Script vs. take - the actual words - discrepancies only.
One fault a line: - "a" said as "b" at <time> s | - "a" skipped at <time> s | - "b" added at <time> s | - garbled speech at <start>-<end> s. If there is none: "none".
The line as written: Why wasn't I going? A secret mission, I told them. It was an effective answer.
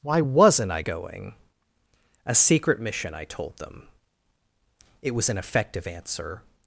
none